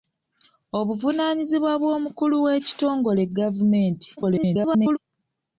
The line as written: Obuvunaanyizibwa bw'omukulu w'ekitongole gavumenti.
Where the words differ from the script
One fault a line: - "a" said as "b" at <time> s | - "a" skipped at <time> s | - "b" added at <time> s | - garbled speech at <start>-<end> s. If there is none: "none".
- garbled speech at 4.2-5.0 s